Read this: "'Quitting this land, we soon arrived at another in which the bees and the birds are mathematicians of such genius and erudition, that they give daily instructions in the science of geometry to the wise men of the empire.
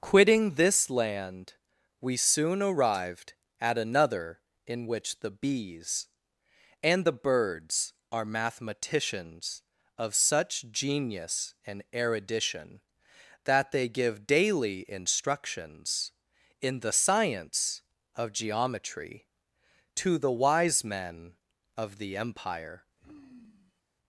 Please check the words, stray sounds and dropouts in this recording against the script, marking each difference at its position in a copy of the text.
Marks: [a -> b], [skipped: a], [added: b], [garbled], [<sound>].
"'Quitting this land, we soon arrived at another in which the bees and the birds are mathematicians of such genius and erudition, that they give daily instructions in the science of geometry to the wise men of the empire. [sigh]